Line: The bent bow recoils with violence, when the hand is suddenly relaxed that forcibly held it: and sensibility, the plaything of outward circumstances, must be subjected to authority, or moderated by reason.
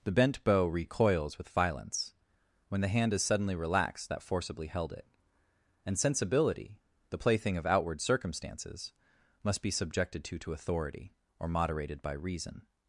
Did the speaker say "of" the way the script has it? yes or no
yes